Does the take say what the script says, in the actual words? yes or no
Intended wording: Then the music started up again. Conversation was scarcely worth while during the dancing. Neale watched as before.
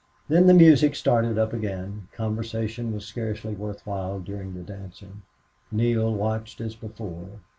yes